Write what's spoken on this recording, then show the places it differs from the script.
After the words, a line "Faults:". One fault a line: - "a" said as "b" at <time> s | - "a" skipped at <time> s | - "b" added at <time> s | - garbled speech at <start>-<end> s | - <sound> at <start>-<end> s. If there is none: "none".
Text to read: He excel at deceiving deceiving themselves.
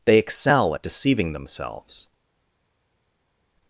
They excel at deceiving themselves.
Faults:
- "He" said as "They" at 0.1 s
- "deceiving" skipped at 1.3 s